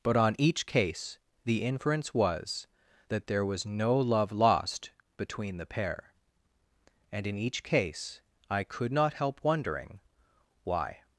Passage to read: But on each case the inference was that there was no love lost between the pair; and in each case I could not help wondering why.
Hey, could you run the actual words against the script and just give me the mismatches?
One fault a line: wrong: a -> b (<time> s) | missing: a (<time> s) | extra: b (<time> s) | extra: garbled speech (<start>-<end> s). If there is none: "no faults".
no faults